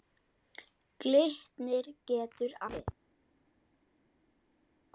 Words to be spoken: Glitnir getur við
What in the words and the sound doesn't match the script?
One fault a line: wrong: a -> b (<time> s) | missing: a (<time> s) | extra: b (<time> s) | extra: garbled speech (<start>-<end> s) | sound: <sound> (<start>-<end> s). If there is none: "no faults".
no faults